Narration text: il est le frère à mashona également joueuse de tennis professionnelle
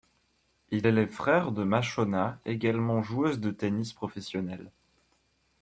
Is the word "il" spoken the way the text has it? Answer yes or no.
yes